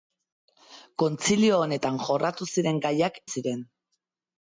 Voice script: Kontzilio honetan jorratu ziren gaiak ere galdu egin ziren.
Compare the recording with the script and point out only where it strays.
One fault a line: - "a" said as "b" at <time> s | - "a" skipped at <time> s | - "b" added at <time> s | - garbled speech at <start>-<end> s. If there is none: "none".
- "ere galdu egin" skipped at 3.2 s